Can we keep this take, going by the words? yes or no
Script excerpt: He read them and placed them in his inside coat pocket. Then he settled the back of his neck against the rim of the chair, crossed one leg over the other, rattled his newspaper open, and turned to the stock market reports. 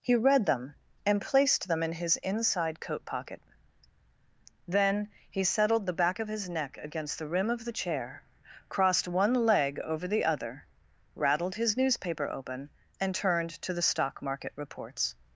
yes